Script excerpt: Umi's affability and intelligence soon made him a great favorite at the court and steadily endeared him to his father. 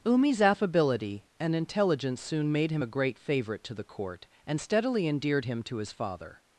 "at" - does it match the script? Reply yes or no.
no